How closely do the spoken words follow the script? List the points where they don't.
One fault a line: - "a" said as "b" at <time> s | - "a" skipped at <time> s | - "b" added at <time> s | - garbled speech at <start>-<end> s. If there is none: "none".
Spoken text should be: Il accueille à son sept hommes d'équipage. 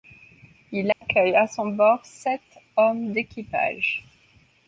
- "bord" added at 1.7 s